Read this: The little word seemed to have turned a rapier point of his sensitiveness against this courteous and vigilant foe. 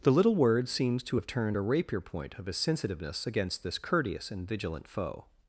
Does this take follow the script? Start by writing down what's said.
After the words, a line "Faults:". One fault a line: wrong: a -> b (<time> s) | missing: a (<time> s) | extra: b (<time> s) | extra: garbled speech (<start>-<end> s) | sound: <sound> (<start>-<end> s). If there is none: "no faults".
The little word seems to have turned a rapier point of his sensitiveness against this courteous and vigilant foe.
Faults:
wrong: seemed -> seems (0.7 s)